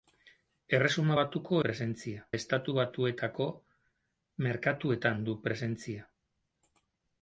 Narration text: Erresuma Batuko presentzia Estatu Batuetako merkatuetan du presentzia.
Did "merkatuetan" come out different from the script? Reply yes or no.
no